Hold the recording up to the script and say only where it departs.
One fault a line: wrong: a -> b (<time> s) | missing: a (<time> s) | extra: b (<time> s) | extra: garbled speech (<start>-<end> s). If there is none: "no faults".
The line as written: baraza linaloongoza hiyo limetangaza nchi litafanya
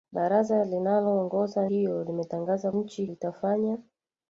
no faults